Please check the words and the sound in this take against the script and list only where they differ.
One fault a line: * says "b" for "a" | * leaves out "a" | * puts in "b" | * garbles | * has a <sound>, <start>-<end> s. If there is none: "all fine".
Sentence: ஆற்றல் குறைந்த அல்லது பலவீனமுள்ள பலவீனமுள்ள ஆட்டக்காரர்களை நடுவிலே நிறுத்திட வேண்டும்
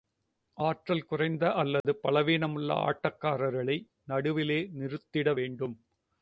* has a dropout, 1.8-1.8 s
* leaves out "பலவீனமுள்ள"